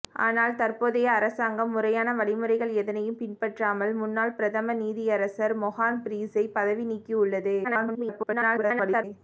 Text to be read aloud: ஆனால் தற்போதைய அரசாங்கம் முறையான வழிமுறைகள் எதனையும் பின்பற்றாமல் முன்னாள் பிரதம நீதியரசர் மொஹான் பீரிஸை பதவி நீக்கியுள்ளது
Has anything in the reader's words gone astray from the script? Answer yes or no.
yes